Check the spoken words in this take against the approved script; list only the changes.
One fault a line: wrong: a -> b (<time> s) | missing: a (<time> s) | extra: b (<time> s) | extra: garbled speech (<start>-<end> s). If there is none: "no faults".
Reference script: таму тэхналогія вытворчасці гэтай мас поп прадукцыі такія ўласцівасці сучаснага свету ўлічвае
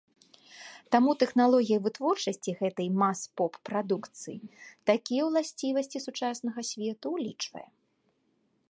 no faults